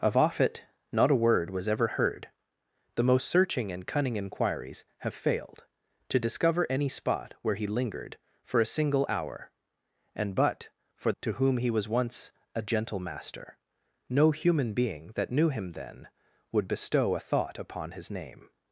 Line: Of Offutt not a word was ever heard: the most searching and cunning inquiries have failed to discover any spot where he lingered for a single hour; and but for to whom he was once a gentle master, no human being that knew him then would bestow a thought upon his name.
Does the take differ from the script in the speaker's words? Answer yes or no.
no